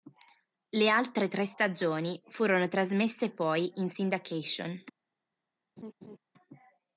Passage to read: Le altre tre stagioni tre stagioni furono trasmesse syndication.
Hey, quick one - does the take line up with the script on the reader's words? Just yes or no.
no